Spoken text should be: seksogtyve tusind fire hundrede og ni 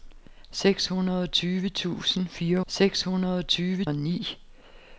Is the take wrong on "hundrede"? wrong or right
wrong